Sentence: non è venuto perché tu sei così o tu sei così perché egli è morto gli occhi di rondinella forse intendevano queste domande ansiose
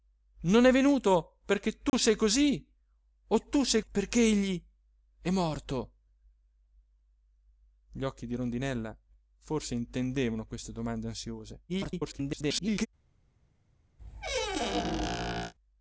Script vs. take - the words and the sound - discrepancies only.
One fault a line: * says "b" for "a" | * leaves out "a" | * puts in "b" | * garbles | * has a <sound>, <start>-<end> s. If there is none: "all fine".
* has a dropout, 1.9-1.9 s
* leaves out "così"
* garbles
* has a squeak, 14.0-15.5 s